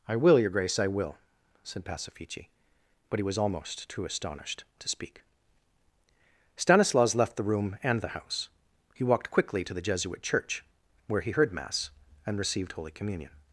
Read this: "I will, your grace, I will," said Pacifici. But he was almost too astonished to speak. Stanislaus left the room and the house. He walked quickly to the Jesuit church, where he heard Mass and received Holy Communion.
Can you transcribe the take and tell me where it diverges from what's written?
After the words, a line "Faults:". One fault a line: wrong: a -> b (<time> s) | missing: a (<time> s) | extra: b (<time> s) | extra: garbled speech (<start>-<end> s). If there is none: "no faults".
"I will, your grace, I will," said Pacifici. But he was almost too astonished to speak. Stanislaus left the room and the house. He walked quickly to the Jesuit church, where he heard Mass and received Holy Communion.
Faults:
no faults